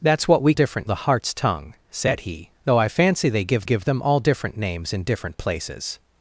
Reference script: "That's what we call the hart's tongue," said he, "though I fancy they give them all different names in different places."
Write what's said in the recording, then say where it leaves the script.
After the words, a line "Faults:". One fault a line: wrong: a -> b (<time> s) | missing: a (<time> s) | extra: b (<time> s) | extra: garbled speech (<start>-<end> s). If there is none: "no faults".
"That's what we different the hart's tongue," said he, "though I fancy they give give them all different names in different places."
Faults:
wrong: call -> different (0.5 s)
extra: give (3.6 s)